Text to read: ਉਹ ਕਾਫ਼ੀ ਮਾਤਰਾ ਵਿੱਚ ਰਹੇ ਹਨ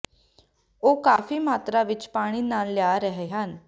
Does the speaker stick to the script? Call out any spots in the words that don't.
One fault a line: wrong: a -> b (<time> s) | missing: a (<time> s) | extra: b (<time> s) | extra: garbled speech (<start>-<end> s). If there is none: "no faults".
extra: ਪਾਣੀ ਨਾਲ ਲਿਆ (2.1 s)